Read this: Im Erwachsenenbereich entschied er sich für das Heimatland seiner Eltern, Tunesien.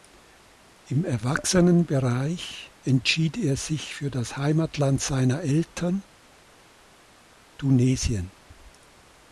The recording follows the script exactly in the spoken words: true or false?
true